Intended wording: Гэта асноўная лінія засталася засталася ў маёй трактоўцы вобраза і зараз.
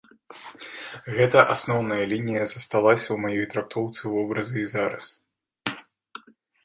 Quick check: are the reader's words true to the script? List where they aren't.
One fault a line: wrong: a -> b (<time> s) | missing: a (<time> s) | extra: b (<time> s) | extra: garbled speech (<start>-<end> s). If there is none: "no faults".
missing: засталася (3.0 s)